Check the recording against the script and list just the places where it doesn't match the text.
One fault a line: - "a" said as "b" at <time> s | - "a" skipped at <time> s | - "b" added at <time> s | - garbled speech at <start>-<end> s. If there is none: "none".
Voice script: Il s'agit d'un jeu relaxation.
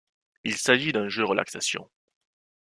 none